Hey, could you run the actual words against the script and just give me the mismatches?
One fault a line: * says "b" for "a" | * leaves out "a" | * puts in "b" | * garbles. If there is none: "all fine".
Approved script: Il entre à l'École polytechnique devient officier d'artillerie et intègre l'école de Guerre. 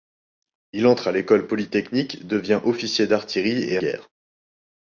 * leaves out "intègre l'école de"